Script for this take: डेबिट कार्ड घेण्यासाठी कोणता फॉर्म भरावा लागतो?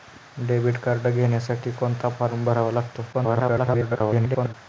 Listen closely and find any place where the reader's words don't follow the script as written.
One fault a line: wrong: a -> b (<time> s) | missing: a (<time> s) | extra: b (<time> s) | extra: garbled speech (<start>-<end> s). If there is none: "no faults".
extra: garbled speech (3.1-4.5 s)